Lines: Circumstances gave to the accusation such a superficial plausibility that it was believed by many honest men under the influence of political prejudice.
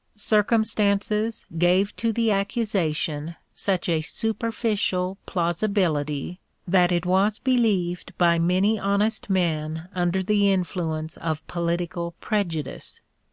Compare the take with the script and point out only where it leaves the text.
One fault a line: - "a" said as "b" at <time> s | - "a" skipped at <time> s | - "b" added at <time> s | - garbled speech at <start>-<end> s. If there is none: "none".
none